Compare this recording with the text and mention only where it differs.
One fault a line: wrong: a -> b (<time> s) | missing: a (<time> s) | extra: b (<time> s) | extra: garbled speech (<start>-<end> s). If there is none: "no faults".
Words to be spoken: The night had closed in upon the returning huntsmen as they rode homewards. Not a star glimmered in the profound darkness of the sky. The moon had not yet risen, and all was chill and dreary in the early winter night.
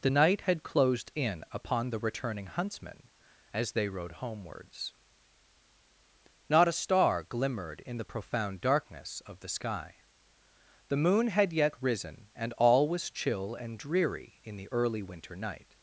missing: not (11.5 s)